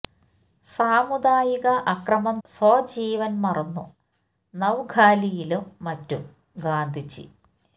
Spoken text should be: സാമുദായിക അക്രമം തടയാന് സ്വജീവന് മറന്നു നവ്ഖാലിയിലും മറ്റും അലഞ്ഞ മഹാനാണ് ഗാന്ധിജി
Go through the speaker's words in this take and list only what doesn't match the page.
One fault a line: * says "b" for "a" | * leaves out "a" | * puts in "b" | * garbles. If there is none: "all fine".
* leaves out "തടയാന്"
* leaves out "അലഞ്ഞ മഹാനാണ്"